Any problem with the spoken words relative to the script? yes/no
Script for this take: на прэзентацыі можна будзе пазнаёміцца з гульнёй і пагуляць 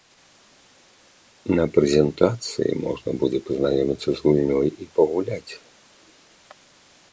no